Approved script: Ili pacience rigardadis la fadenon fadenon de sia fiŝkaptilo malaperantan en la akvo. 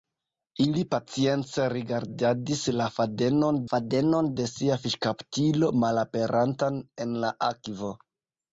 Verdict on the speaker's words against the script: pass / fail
pass